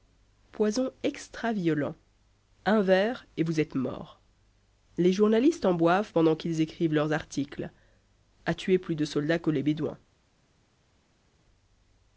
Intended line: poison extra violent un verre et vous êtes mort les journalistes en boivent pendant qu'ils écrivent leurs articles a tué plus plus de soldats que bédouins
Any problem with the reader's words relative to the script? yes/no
yes